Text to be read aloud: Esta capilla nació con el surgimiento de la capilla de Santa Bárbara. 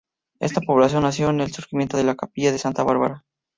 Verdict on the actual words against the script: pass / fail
fail